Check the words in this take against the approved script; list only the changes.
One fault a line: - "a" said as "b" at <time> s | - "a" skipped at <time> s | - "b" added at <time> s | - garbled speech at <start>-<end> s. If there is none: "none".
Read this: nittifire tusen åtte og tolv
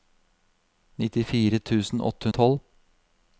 none